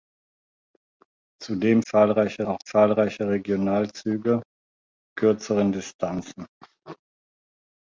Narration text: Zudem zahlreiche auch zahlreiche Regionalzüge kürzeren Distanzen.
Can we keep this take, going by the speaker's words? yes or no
yes